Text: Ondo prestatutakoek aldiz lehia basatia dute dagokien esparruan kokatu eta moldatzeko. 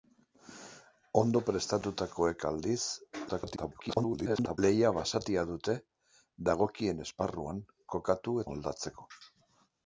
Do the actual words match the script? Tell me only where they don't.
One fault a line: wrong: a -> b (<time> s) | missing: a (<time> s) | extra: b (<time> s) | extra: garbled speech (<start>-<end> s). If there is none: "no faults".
extra: garbled speech (3.3-4.6 s)
missing: eta (8.4 s)